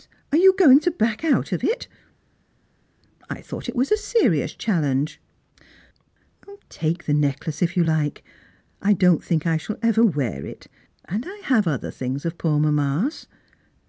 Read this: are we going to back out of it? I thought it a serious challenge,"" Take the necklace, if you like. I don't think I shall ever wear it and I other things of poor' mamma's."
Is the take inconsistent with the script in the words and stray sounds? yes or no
yes